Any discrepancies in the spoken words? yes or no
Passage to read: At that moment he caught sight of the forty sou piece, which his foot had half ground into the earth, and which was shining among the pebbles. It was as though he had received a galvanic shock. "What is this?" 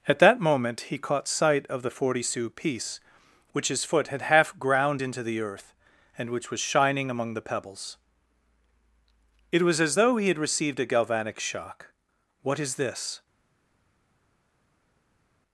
no